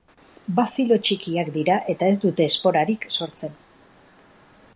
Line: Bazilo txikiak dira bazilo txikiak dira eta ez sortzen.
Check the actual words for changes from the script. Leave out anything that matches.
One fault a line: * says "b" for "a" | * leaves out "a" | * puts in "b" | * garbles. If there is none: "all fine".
* says "eta ez dute esporarik" for "bazilo txikiak dira eta ez"